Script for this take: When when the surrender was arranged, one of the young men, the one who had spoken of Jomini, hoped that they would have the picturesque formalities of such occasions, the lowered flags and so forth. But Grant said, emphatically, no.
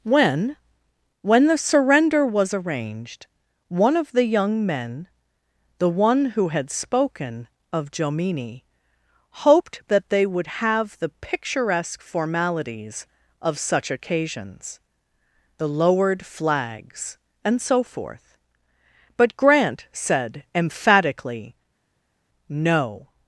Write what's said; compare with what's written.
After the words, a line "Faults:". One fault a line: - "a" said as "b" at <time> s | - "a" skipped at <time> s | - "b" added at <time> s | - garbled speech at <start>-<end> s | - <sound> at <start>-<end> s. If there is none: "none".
When when the surrender was arranged, one of the young men, the one who had spoken of Jomini, hoped that they would have the picturesque formalities of such occasions, the lowered flags and so forth. But Grant said, emphatically, no.
Faults:
none